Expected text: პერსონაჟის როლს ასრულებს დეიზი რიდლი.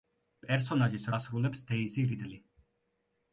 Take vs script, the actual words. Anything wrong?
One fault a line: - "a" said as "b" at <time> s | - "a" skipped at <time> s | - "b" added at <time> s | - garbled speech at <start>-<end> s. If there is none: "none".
- "როლს" skipped at 1.1 s